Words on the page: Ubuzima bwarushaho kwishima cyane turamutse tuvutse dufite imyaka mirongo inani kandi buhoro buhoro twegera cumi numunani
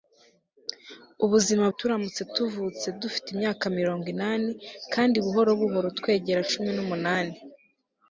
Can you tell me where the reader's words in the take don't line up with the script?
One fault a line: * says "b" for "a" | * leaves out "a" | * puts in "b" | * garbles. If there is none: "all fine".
* leaves out "bwarushaho kwishima cyane"